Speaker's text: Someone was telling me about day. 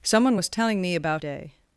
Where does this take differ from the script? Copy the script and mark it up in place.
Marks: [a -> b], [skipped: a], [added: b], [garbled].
Someone was telling me about day.